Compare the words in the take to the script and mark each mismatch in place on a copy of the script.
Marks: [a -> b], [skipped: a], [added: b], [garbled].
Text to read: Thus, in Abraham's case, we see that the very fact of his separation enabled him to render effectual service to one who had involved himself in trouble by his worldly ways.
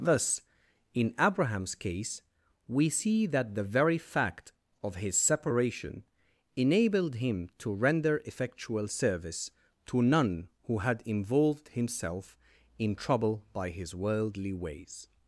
Thus, in Abraham's case, we see that the very fact of his separation enabled him to render effectual service to [one -> none] who had involved himself in trouble by his worldly ways.